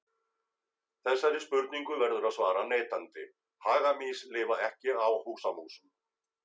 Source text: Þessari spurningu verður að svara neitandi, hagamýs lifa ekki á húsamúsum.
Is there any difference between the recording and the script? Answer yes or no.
no